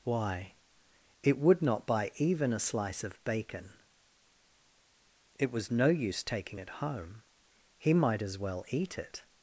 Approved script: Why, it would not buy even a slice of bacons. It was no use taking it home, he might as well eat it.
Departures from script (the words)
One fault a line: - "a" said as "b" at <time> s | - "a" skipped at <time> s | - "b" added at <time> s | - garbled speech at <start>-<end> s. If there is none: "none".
- "bacons" said as "bacon" at 3.2 s